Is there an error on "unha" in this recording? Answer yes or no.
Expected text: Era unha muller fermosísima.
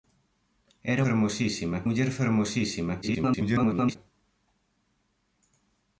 yes